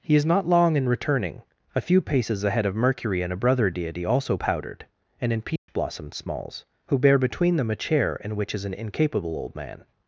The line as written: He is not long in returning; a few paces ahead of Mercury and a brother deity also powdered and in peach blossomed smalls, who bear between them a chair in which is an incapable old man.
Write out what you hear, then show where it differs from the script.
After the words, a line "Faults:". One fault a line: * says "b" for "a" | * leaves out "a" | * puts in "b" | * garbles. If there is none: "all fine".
He is not long in returning; a few paces ahead of Mercury and a brother deity also powdered and in peach blossomed smalls, who bear between them a chair in which is an incapable old man.
Faults:
all fine